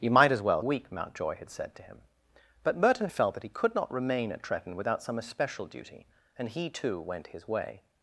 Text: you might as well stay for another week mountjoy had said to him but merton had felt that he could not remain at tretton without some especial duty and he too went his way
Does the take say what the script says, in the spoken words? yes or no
no